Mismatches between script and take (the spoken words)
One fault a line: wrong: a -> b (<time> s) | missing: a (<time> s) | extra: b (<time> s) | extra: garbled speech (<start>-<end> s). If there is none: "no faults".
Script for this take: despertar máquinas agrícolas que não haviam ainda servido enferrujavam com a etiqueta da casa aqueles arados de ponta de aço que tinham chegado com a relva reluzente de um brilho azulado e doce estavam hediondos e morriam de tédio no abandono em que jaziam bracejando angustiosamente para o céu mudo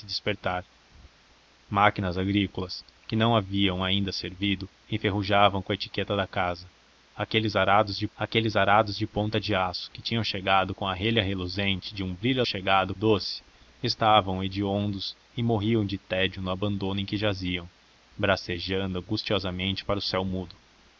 extra: aqueles arados de (8.1 s)
wrong: azulado -> chegado (12.4 s)